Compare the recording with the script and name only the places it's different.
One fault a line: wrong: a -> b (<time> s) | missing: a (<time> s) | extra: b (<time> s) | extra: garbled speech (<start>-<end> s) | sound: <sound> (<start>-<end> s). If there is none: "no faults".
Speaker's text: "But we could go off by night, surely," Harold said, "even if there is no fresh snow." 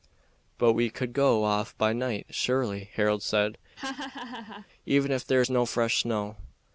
sound: laugh (3.8-4.7 s)